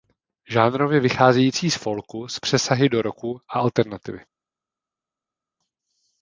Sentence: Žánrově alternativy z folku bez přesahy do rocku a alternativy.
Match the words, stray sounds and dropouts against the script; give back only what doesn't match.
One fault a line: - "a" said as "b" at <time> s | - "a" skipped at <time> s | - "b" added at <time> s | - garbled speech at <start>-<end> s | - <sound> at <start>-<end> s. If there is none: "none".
- "alternativy" said as "vycházející" at 1.0 s
- "bez" said as "s" at 2.3 s